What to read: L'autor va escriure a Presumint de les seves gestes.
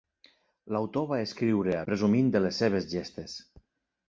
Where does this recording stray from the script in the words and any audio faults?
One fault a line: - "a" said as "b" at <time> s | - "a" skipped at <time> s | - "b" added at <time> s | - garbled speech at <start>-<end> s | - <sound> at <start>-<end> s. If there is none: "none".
none